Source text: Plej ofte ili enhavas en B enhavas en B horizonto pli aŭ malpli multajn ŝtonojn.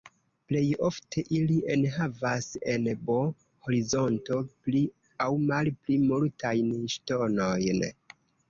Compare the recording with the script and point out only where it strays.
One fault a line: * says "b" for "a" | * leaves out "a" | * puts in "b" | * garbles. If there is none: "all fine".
* leaves out "enhavas en B"